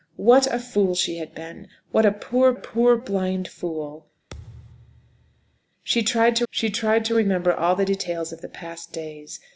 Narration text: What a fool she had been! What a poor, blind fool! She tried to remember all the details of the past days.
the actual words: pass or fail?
fail